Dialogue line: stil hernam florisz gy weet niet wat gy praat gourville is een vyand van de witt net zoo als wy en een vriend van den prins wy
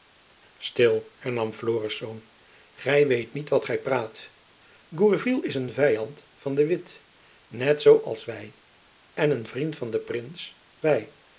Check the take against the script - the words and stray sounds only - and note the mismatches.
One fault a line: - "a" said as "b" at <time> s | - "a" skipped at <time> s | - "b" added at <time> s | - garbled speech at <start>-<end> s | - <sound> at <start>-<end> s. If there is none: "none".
none